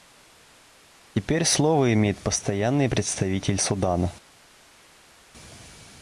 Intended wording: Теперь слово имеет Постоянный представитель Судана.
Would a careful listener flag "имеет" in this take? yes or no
no